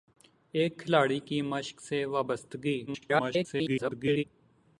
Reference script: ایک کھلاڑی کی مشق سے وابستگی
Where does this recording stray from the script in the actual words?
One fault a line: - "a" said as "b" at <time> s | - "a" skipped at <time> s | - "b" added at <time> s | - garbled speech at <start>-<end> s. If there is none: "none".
- garbled speech at 2.9-4.2 s